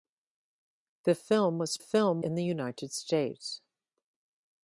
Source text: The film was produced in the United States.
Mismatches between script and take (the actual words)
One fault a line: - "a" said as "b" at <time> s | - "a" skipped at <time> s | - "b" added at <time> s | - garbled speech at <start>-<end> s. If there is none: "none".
- "produced" said as "film" at 1.8 s